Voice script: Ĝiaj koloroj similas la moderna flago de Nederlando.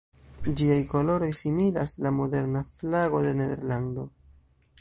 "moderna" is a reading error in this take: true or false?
false